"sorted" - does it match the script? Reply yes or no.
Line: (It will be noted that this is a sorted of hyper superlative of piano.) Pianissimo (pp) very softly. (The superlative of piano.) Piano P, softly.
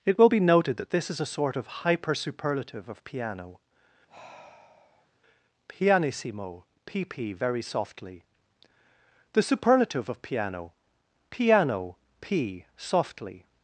no